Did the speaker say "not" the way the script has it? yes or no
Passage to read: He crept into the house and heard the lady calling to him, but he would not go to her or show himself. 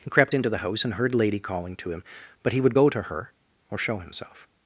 no